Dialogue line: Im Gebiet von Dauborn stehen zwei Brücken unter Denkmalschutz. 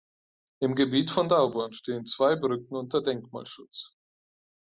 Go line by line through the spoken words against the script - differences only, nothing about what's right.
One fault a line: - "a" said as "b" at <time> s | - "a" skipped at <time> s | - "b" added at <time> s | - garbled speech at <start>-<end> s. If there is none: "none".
none